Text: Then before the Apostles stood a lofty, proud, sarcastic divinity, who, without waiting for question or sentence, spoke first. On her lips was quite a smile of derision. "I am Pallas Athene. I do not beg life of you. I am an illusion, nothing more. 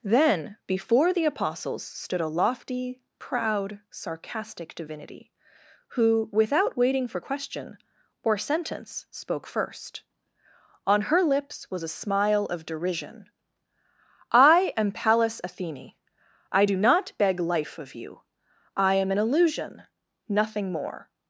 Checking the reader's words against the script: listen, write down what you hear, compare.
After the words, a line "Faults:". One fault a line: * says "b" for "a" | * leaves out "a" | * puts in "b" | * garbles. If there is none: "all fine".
Then before the Apostles stood a lofty, proud, sarcastic divinity, who, without waiting for question or sentence, spoke first. On her lips was a smile of derision. "I am Pallas Athene. I do not beg life of you. I am an illusion, nothing more.
Faults:
* leaves out "quite"